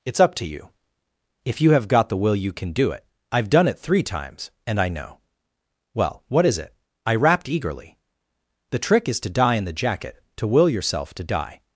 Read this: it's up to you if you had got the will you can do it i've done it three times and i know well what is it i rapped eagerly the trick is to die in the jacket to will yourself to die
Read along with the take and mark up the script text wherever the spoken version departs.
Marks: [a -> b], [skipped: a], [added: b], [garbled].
it's up to you if you [had -> have] got the will you can do it i've done it three times and i know well what is it i rapped eagerly the trick is to die in the jacket to will yourself to die